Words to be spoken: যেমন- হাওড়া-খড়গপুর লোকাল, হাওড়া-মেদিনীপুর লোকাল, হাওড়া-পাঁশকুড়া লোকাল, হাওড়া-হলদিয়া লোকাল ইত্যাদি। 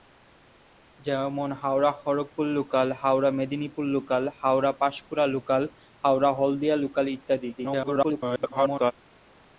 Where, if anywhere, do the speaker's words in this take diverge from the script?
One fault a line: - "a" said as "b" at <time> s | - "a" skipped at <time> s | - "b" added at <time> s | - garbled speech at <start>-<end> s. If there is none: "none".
- garbled speech at 7.6-8.9 s